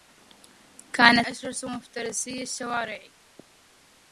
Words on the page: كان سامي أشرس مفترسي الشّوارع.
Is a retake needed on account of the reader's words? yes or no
yes